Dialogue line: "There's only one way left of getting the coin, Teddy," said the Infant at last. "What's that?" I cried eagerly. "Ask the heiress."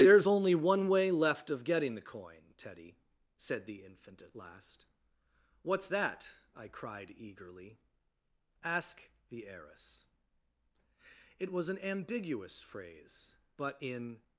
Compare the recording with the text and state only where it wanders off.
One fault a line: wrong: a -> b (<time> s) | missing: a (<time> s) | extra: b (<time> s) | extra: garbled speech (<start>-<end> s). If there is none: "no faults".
extra: It was an ambiguous phrase but in (11.4 s)